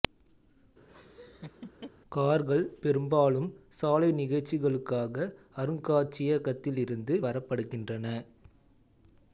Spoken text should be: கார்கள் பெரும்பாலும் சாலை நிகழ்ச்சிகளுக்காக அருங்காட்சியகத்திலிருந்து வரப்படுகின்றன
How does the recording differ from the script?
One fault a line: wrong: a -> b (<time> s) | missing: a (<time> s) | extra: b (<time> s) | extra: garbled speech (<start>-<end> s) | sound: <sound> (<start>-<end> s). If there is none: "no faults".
sound: laugh (0.9-1.9 s)